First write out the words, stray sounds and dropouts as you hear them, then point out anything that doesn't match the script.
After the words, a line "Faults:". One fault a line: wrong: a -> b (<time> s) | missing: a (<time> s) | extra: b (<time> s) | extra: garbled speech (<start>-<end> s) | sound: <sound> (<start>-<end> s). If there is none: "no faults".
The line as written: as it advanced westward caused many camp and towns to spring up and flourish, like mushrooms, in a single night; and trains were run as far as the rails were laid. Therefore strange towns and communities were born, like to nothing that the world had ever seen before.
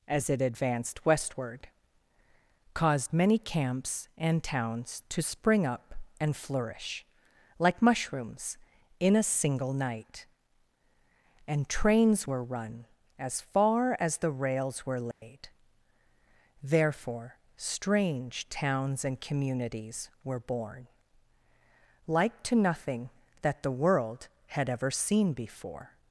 as it advanced westward caused many camps and towns to spring up and flourish, like mushrooms, in a single night; and trains were run as far as the rails were laid. Therefore strange towns and communities were born, like to nothing that the world had ever seen before.
Faults:
wrong: camp -> camps (3.4 s)
sound: dropout (15.1-15.2 s)